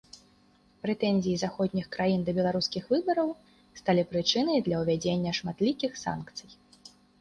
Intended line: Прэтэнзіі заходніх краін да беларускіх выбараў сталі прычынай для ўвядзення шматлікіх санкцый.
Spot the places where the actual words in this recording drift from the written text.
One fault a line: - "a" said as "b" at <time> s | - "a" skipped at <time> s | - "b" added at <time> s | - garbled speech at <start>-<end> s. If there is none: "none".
none